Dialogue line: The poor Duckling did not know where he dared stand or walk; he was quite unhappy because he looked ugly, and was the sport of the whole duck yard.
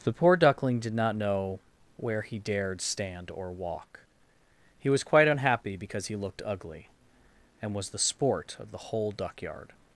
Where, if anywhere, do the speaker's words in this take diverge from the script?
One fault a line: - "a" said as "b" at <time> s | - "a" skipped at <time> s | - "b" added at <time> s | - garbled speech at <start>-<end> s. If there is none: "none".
none